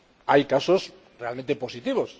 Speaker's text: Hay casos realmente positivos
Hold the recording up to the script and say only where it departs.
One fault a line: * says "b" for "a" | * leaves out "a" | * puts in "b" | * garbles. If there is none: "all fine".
all fine